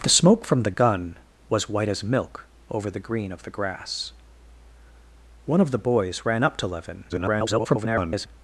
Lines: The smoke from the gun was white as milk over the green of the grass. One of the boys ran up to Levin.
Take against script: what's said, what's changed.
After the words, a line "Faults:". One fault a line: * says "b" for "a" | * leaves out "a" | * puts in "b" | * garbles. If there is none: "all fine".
The smoke from the gun was white as milk over the green of the grass. One of the boys ran up to Levin. [garbled]
Faults:
* garbles